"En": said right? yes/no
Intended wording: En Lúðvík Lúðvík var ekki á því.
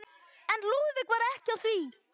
yes